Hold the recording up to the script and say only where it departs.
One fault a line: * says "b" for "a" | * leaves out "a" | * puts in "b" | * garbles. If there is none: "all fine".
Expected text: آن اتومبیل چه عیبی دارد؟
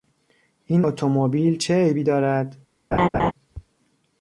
* says "این" for "آن"